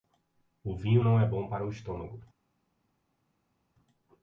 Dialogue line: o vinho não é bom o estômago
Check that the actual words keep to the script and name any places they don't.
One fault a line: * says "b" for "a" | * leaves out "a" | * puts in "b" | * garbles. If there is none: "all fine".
* puts in "para"